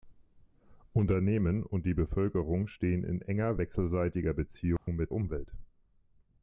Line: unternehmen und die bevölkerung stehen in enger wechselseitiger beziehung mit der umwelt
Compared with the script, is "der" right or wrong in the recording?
wrong